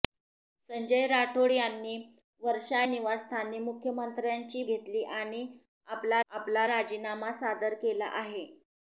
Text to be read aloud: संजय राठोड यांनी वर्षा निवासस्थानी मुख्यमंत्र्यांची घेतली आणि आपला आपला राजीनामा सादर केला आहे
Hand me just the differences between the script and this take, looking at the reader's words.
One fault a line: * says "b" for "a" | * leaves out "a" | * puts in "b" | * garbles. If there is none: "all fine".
all fine